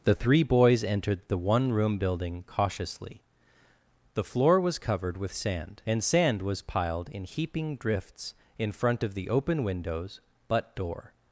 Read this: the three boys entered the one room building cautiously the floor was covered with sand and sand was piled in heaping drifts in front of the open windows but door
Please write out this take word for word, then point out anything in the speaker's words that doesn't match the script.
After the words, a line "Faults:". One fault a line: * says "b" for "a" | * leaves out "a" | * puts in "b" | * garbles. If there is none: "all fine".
the three boys entered the one room building cautiously the floor was covered with sand and sand was piled in heaping drifts in front of the open windows but door
Faults:
all fine